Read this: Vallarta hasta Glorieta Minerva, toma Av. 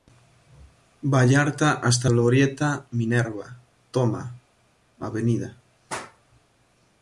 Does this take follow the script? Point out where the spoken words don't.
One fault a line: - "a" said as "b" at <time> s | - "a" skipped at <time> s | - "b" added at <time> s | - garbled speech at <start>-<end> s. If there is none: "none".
none